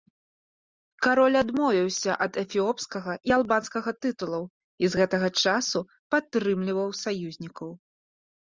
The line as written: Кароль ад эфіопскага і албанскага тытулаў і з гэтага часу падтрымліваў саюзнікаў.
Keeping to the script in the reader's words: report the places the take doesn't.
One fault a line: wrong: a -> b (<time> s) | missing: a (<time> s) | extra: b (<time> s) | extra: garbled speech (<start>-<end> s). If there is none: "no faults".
extra: адмовіўся (1.4 s)